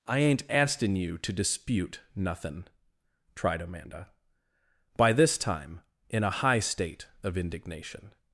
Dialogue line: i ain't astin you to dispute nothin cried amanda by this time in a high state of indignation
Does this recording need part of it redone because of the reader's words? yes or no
yes